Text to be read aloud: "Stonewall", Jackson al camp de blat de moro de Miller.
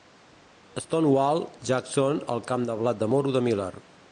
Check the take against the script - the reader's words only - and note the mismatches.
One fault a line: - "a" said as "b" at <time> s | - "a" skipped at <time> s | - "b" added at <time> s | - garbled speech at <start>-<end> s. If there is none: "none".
none